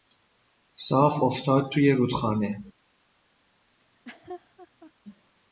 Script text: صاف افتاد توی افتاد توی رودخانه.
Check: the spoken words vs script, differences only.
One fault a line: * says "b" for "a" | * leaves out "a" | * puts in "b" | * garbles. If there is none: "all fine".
* leaves out "افتاد توی"